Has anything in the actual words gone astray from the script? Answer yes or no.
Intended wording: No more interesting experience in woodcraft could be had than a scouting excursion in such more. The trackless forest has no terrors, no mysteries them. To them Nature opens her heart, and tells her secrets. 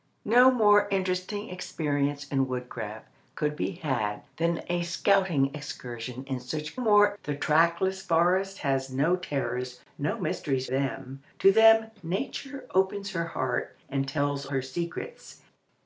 no